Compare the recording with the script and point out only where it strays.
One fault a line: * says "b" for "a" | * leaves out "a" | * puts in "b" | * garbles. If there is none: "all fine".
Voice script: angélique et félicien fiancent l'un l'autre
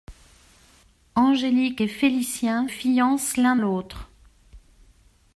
all fine